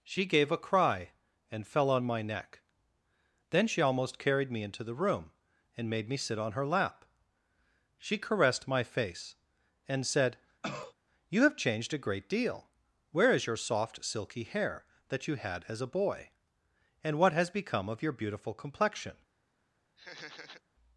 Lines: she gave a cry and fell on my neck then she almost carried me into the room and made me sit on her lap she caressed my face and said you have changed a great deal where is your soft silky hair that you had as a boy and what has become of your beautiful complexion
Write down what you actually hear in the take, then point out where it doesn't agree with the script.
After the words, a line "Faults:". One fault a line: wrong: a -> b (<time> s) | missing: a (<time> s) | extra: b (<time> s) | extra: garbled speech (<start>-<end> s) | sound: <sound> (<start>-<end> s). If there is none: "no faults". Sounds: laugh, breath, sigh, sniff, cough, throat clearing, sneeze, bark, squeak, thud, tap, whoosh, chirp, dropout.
she gave a cry and fell on my neck then she almost carried me into the room and made me sit on her lap she caressed my face and said you have changed a great deal where is your soft silky hair that you had as a boy and what has become of your beautiful complexion
Faults:
sound: cough (10.6-10.9 s)
sound: laugh (20.0-20.6 s)